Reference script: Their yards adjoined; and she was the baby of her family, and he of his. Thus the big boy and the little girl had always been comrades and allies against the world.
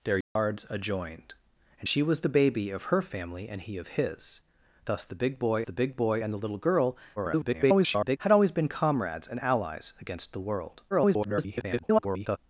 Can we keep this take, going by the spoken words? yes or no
no